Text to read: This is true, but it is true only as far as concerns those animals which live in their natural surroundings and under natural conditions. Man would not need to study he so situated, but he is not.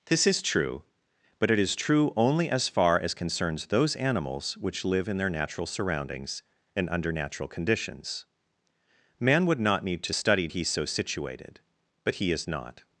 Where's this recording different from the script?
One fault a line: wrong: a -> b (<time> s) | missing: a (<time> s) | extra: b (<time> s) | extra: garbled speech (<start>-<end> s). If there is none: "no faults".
no faults